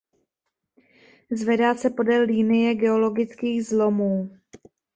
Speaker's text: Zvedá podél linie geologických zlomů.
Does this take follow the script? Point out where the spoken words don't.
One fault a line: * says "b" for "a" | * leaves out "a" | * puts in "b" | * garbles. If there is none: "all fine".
* puts in "se"